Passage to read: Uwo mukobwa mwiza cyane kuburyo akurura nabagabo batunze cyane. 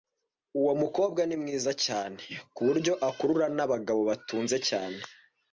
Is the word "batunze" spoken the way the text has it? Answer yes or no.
yes